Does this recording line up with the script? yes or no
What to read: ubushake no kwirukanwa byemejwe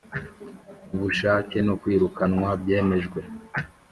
yes